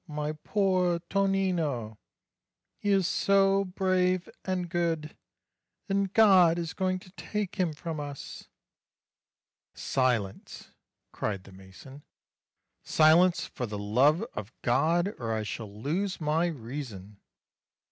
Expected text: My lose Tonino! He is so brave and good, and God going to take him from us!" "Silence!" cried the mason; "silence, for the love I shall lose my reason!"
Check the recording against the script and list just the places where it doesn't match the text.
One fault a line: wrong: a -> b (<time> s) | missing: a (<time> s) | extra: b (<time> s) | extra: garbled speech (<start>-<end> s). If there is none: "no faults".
wrong: lose -> poor (0.3 s)
extra: is (6.6 s)
extra: of God or (14.3 s)